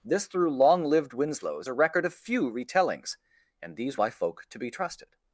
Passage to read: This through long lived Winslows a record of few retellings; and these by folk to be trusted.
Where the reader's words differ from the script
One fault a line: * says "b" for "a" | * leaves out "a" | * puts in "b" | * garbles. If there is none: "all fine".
all fine